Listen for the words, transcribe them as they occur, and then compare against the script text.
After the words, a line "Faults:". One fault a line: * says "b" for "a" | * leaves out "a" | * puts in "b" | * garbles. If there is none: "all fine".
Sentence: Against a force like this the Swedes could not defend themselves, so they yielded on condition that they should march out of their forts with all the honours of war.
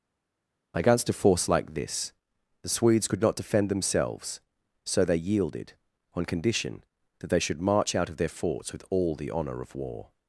Against a force like this the Swedes could not defend themselves, so they yielded on condition that they should march out of their forts with all the honour of war.
Faults:
* says "honour" for "honours"